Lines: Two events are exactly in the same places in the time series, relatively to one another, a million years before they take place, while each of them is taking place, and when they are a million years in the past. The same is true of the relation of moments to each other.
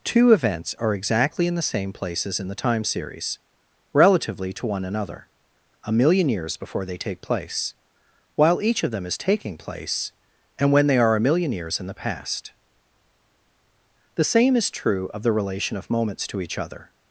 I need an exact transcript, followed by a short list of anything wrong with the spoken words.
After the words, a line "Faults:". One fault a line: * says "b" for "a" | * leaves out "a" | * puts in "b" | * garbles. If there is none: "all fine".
Two events are exactly in the same places in the time series, relatively to one another, a million years before they take place, while each of them is taking place, and when they are a million years in the past. The same is true of the relation of moments to each other.
Faults:
all fine